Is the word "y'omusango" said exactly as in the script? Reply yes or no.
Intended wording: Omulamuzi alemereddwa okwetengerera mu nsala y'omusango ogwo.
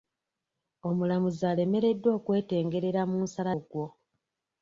no